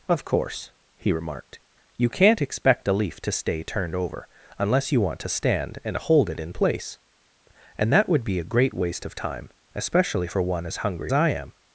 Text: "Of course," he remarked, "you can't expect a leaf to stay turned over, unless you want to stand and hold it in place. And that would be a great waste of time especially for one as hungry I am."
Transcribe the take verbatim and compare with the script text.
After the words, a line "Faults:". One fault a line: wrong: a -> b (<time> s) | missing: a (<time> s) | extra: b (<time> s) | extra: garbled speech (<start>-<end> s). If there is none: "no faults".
"Of course," he remarked, "you can't expect a leaf to stay turned over, unless you want to stand and hold it in place. And that would be a great waste of time especially for one as hungry I am."
Faults:
no faults